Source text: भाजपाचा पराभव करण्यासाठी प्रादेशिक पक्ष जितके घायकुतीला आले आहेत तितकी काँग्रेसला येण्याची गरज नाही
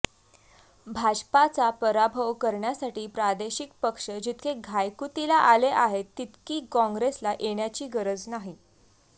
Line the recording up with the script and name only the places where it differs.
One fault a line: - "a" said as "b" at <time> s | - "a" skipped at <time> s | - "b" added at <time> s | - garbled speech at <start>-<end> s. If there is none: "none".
none